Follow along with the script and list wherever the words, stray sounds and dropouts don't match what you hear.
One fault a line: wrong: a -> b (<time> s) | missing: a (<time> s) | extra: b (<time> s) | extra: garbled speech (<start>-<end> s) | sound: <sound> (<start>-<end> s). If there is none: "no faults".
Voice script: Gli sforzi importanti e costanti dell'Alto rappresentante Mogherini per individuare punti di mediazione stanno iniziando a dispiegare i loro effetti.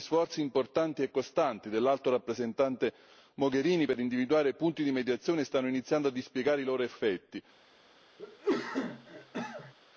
sound: cough (8.2-9.7 s)